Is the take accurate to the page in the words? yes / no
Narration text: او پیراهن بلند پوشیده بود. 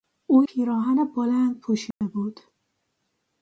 yes